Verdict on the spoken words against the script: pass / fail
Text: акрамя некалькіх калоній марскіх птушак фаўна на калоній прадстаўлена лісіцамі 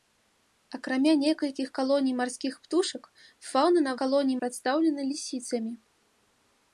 pass